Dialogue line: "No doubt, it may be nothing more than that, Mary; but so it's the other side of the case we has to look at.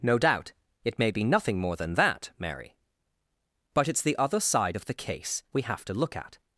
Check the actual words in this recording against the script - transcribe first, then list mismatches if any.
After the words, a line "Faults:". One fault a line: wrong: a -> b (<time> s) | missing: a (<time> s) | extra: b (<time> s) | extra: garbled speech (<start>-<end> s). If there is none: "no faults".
"No doubt, it may be nothing more than that, Mary; but it's the other side of the case we have to look at.
Faults:
missing: so (3.9 s)
wrong: has -> have (5.6 s)